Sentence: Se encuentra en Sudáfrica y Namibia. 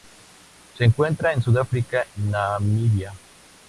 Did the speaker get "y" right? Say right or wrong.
wrong